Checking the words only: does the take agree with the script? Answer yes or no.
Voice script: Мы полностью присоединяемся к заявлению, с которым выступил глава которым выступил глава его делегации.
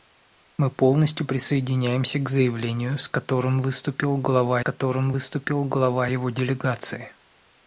yes